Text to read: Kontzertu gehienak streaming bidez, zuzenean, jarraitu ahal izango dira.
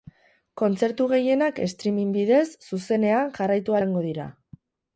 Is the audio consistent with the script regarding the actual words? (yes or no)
no